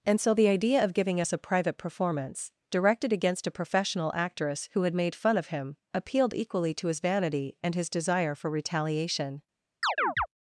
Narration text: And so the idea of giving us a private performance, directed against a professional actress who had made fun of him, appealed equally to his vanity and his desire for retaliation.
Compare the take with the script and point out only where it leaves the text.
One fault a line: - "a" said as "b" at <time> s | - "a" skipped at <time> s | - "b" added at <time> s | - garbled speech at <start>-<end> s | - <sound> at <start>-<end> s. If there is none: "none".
- chirp at 9.8-10.3 s